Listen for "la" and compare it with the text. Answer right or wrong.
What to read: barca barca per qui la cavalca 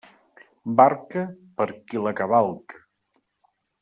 right